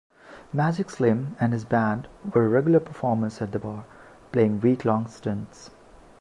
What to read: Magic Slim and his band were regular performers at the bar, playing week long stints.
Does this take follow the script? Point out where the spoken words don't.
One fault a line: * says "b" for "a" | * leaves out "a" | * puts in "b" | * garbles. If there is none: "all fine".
all fine